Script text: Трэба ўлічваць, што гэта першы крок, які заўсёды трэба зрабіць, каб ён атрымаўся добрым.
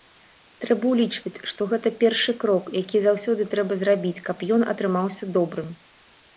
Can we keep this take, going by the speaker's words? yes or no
yes